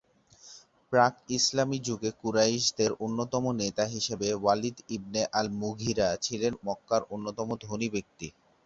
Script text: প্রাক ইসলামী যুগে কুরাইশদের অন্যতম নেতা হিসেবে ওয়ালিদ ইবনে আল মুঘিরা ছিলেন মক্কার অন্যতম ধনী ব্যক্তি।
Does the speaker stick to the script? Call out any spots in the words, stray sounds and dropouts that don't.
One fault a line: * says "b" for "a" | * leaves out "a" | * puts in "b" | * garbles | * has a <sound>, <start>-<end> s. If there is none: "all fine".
all fine